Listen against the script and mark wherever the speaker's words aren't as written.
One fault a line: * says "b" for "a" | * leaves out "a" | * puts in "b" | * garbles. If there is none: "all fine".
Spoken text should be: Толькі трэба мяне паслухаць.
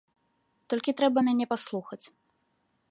all fine